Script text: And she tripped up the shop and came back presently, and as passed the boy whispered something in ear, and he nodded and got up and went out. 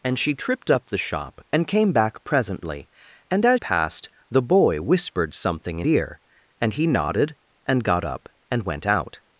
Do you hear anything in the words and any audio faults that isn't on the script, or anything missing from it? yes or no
no